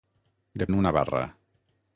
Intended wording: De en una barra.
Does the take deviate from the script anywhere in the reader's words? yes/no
no